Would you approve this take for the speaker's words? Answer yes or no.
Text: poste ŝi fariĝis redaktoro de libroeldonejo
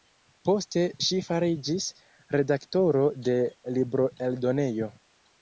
yes